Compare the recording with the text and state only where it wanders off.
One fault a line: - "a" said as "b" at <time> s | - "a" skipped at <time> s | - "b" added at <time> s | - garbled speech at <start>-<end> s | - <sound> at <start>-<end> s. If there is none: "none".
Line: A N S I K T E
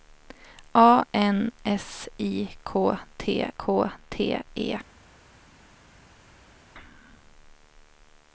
- "K T" added at 3.6 s